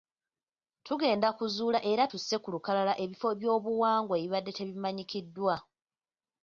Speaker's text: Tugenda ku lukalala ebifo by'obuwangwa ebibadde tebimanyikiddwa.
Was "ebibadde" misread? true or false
false